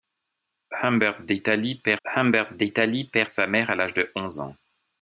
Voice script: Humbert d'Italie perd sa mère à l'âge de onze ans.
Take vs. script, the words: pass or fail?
fail